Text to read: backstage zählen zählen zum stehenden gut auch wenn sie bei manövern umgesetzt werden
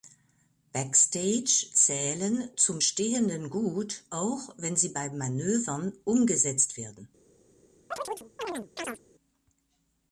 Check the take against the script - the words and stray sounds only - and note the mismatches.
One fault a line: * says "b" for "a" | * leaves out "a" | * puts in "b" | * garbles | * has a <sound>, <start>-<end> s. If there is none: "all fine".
* leaves out "zählen"
* has a chirp, 7.9-9.0 s